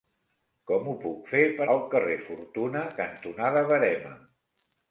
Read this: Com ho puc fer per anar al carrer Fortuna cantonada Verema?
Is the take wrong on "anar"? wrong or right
wrong